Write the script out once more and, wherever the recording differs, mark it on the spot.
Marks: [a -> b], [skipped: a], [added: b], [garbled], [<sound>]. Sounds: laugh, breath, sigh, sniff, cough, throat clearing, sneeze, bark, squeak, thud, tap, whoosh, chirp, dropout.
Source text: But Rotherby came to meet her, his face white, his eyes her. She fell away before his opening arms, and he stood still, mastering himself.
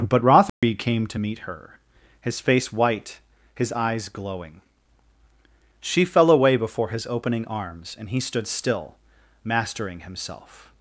But Rotherby [dropout] came to meet her, his face white, his eyes [her. -> glowing] She fell away before his opening arms, and he stood still, mastering himself.